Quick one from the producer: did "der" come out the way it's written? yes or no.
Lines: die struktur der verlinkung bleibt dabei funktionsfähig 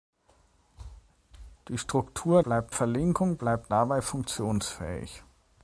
no